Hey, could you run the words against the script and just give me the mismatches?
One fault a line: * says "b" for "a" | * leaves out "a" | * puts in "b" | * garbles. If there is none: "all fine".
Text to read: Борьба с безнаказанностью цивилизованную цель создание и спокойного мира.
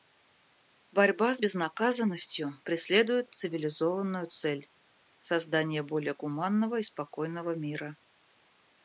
* puts in "преследует"
* puts in "более гуманного"